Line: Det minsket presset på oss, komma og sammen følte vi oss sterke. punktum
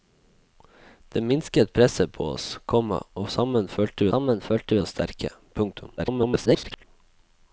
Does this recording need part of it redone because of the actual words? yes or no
yes